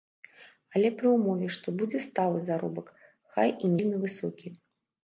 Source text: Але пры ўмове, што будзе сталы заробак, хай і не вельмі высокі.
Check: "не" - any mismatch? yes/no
yes